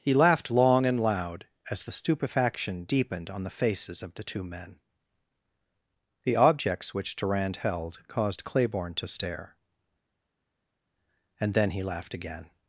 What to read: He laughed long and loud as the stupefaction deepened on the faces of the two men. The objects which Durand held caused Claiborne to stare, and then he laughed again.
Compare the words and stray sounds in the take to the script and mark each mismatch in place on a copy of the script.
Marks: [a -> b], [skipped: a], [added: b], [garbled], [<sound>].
He laughed long and loud as the stupefaction deepened on the faces of the two men. The objects which Durand held caused Claiborne to stare, and then he laughed again.